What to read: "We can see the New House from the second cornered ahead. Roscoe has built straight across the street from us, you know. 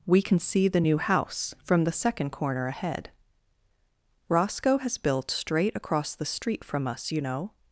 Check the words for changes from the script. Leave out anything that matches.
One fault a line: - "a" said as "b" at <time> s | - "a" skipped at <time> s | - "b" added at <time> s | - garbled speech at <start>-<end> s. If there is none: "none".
- "cornered" said as "corner" at 2.3 s